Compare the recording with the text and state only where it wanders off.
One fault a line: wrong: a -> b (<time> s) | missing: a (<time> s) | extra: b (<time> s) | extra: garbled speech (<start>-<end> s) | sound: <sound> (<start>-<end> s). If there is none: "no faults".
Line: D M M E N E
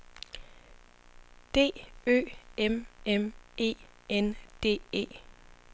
extra: Ø (2.1 s)
extra: D (4.6 s)